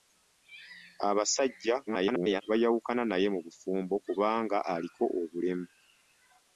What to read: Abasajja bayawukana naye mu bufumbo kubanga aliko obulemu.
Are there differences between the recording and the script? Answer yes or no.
yes